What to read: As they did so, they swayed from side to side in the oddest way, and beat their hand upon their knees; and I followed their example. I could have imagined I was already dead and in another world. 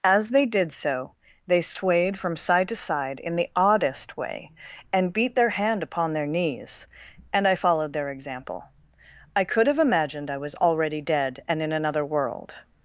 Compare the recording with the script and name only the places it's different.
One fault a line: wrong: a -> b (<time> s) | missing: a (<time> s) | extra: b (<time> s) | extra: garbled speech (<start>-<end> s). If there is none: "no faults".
no faults